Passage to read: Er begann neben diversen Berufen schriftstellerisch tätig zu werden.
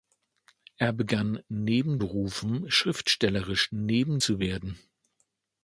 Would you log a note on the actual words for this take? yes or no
yes